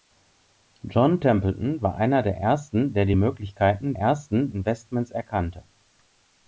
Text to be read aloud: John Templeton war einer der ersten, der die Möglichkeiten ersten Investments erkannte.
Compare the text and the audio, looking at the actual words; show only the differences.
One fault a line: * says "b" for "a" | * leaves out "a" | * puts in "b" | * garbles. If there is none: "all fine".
all fine